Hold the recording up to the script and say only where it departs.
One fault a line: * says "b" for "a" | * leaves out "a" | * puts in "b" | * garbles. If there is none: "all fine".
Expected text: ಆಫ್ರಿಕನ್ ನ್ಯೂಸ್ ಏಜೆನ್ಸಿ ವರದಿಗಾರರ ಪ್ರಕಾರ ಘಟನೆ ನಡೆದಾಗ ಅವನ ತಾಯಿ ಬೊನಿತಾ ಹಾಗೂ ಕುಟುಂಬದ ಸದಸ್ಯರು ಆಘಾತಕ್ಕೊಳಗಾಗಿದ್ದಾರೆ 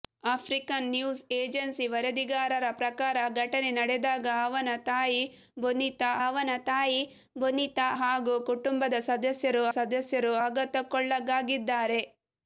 * puts in "ಅವನ ತಾಯಿ ಬೊನಿತಾ"
* puts in "ಸದಸ್ಯರು"